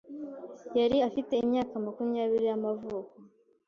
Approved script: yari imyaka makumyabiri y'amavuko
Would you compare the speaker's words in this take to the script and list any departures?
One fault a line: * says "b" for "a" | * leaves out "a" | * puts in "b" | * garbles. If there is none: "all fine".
* puts in "afite"